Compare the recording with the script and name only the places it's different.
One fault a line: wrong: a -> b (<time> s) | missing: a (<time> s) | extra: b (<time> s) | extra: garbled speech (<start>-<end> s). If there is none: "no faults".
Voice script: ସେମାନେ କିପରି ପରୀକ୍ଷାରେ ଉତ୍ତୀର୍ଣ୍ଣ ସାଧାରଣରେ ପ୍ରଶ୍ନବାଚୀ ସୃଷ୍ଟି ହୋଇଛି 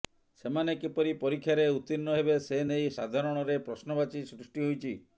extra: ହେବେ ସେ ନେଇ (2.2 s)